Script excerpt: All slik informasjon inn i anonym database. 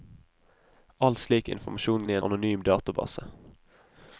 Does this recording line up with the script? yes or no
yes